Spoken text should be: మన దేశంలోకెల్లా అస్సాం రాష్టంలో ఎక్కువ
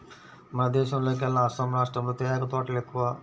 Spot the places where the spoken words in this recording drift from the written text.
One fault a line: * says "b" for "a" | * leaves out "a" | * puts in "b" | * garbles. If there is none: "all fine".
* puts in "తేయాకు తోటలు"